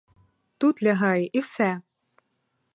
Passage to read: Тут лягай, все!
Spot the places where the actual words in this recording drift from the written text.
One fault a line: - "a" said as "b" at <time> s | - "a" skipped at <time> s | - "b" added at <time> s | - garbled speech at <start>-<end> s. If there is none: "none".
- "і" added at 1.2 s